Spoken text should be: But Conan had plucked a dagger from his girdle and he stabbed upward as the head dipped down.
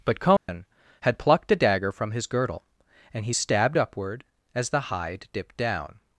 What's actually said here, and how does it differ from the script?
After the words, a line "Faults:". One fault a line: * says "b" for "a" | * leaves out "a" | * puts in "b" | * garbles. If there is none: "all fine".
But Conan had plucked a dagger from his girdle and he stabbed upward as the hide dipped down.
Faults:
* says "hide" for "head"